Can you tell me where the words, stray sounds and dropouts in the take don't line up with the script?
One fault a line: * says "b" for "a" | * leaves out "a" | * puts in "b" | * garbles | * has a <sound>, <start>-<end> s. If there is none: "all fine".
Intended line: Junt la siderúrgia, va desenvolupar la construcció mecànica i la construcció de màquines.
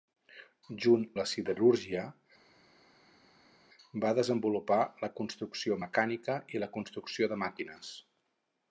all fine